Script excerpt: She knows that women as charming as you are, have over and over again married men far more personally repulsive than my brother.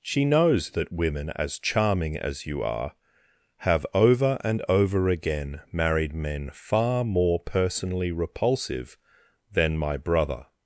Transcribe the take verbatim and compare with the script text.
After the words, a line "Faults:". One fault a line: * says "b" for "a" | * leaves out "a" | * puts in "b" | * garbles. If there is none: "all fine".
She knows that women as charming as you are, have over and over again married men far more personally repulsive than my brother.
Faults:
all fine